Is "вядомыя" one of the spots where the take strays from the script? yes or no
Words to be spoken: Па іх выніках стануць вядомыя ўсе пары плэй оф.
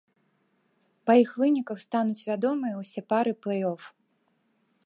no